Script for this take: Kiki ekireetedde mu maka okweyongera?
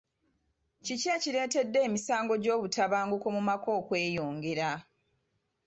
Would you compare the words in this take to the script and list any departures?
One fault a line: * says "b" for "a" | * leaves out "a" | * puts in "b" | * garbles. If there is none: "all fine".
* puts in "emisango gy'obutabanguko"